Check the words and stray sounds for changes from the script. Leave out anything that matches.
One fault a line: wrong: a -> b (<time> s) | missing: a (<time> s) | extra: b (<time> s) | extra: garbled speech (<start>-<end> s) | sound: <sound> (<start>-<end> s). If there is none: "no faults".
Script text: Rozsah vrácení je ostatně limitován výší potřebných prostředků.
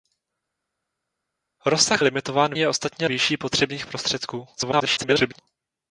wrong: vrácení -> limitován (2.0 s)
missing: limitován (3.1 s)
extra: garbled speech (4.5-5.4 s)